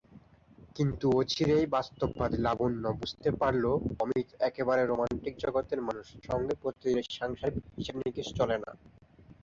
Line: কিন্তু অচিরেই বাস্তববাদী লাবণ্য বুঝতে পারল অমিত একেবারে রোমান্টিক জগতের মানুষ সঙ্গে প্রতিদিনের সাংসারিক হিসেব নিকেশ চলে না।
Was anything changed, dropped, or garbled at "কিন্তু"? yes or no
no